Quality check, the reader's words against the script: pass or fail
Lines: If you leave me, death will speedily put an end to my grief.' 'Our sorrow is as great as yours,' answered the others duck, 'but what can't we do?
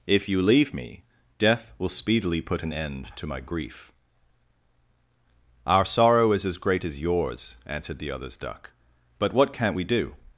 pass